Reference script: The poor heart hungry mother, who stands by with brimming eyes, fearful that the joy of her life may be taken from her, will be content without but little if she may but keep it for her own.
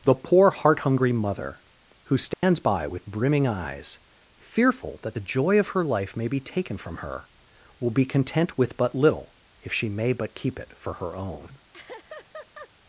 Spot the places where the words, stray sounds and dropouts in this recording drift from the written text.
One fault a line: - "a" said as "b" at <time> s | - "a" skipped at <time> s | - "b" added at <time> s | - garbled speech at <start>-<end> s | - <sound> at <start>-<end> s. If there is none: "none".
- dropout at 2.3-2.4 s
- "without" said as "with" at 8.6 s
- laugh at 11.7-12.7 s